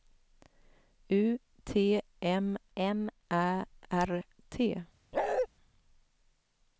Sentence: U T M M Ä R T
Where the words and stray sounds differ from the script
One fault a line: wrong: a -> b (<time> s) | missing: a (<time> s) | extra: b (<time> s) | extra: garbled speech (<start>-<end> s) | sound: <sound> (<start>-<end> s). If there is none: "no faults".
sound: bark (5.1-5.5 s)